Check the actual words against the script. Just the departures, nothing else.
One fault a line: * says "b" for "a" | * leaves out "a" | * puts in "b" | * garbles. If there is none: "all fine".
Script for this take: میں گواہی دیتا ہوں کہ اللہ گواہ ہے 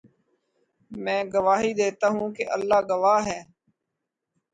all fine